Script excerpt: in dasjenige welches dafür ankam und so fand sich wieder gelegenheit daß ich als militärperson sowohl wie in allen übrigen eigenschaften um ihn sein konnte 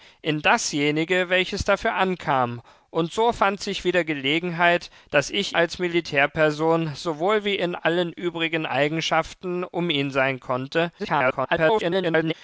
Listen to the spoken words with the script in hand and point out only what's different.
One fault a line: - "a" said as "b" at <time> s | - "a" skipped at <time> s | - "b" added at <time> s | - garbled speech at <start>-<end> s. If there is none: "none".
- garbled speech at 11.0-12.3 s